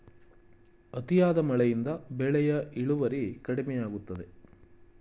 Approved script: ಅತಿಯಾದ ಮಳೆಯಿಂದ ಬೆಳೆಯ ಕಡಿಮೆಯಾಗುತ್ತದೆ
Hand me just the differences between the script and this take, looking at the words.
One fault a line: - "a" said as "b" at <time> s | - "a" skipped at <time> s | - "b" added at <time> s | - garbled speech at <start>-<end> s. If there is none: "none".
- "ಇಳುವರಿ" added at 2.8 s